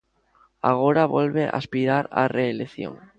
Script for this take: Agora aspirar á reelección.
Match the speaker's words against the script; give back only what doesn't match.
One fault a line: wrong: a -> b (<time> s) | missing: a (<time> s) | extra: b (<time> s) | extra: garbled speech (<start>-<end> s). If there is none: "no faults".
extra: volve (1.1 s)